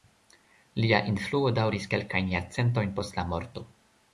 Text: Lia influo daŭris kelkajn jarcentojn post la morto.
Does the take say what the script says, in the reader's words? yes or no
yes